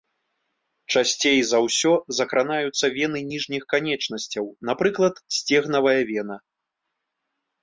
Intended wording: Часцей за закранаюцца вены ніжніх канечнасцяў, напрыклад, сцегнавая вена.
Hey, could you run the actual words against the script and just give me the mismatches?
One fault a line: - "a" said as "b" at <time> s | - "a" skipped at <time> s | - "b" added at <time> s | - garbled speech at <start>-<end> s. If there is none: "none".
- "ўсё" added at 1.6 s